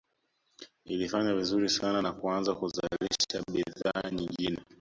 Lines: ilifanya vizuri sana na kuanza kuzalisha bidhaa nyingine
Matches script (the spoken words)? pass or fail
pass